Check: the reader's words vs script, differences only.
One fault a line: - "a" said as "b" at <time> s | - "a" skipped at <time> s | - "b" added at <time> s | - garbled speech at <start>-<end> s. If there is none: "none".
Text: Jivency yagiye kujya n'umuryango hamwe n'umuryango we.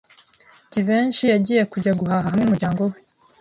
- "n'umuryango" said as "guhaha" at 2.0 s